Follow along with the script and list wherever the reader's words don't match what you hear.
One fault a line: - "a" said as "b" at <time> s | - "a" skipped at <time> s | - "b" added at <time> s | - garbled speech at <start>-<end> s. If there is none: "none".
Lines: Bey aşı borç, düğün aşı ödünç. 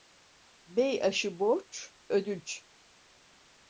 - "düğün aşı" skipped at 1.9 s